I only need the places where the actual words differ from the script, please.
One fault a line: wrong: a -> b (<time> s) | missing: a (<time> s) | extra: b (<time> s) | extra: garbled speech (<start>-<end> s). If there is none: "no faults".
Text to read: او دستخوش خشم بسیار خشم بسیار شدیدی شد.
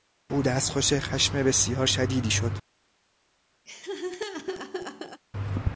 missing: خشم بسیار (1.9 s)